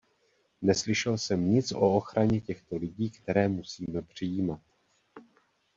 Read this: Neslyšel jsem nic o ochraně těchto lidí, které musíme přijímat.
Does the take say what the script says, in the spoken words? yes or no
yes